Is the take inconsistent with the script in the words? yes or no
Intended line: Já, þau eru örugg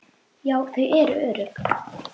no